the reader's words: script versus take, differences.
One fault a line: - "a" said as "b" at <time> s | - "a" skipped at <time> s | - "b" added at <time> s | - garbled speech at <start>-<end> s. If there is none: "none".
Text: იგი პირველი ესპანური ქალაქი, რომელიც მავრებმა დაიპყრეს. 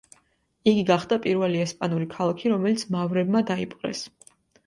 - "გახდა" added at 0.8 s